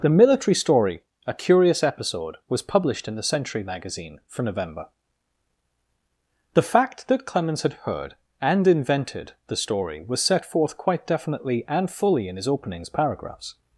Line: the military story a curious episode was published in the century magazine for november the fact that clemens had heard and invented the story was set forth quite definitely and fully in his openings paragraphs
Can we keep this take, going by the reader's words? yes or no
yes